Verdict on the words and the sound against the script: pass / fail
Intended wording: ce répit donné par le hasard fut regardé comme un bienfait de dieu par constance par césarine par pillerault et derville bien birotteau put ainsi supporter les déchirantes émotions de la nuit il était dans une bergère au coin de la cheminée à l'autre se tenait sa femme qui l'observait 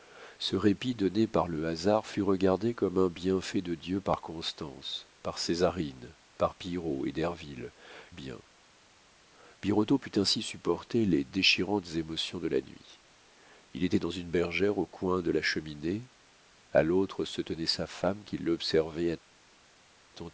pass